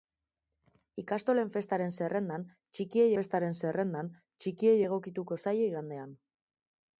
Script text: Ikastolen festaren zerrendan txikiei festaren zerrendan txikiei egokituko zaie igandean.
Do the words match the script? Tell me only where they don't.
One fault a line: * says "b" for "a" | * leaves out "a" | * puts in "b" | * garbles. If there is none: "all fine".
all fine